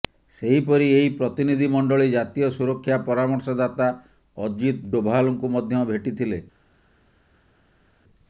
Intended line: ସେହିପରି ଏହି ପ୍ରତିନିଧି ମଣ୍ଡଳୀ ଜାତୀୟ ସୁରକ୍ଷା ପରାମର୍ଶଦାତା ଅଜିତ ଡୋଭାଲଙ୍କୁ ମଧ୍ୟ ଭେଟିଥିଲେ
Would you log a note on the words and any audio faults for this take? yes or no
no